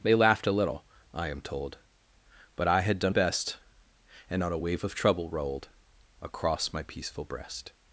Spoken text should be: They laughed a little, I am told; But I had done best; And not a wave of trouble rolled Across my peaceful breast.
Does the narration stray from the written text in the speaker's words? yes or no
no